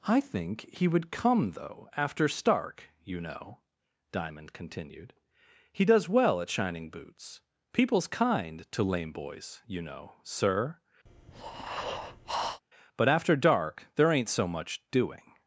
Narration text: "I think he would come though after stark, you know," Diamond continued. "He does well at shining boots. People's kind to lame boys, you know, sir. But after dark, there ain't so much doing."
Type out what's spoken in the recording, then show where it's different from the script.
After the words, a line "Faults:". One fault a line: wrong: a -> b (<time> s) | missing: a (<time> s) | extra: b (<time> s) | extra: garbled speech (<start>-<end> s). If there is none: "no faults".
"I think he would come though after stark, you know," Diamond continued. "He does well at shining boots. People's kind to lame boys, you know, sir. But after dark, there ain't so much doing."
Faults:
no faults